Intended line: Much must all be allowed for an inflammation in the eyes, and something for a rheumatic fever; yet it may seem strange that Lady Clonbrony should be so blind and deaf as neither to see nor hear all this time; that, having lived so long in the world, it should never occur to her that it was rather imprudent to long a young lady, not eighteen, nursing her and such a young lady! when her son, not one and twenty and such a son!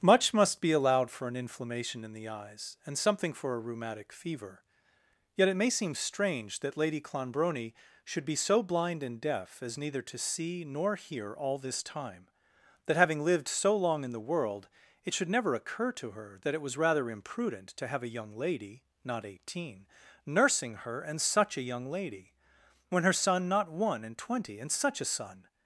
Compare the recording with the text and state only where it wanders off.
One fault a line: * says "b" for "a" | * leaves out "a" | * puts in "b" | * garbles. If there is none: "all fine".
* leaves out "all"
* says "have" for "long"